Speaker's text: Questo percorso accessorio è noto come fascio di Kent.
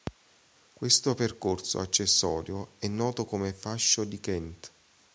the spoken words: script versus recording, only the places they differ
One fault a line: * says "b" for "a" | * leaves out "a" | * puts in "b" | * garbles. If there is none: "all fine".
all fine